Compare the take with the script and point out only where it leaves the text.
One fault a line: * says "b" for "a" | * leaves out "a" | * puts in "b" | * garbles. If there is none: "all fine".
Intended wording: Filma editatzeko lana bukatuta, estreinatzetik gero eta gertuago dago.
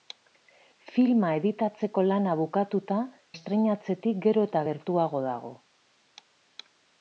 all fine